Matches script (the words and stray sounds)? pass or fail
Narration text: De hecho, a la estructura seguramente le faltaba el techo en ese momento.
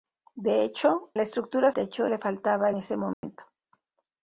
fail